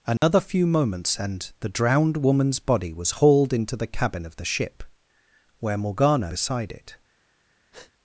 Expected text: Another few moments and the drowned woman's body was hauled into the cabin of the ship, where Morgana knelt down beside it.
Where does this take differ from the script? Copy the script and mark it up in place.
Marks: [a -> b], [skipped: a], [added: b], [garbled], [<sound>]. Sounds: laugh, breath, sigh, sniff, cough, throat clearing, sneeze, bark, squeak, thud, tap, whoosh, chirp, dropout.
Another [dropout] few moments and the drowned woman's body was hauled into the cabin of the ship, where Morgana [skipped: knelt down] beside it. [breath]